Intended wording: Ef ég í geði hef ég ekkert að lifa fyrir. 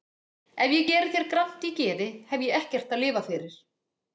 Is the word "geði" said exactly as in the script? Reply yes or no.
yes